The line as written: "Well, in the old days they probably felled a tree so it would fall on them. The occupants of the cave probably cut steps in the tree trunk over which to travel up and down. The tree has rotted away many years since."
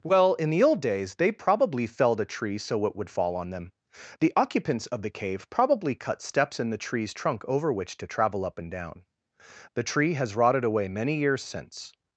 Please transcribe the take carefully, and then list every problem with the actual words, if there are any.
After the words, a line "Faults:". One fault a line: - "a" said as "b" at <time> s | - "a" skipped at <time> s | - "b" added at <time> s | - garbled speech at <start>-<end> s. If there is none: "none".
"Well, in the old days they probably felled a tree so it would fall on them. The occupants of the cave probably cut steps in the trees trunk over which to travel up and down. The tree has rotted away many years since."
Faults:
- "tree" said as "trees" at 6.8 s